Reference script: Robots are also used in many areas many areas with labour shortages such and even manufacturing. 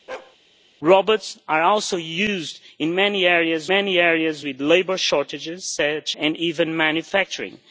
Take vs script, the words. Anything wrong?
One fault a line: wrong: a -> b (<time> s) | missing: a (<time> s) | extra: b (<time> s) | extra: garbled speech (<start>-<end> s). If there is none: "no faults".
no faults